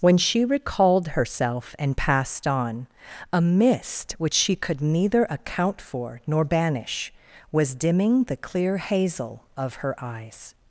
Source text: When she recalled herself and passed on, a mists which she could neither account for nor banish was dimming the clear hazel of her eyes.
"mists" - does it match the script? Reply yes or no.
no